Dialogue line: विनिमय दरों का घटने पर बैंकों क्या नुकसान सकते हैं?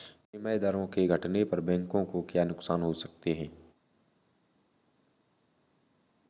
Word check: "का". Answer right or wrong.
wrong